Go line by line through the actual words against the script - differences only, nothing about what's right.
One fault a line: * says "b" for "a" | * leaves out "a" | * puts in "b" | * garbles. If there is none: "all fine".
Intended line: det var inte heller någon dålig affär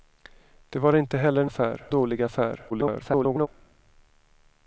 * says "affär" for "någon"
* garbles